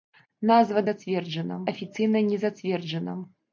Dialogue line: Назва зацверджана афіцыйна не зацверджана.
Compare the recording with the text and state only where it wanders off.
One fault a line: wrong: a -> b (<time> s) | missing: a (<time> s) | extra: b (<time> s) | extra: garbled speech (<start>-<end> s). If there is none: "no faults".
no faults